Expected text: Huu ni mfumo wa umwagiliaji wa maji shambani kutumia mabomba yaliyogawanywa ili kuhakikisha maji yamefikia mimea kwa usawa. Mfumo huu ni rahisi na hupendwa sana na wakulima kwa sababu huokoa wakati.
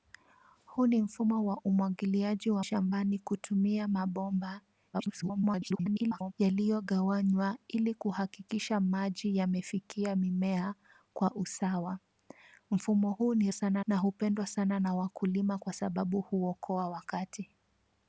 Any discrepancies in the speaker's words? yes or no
yes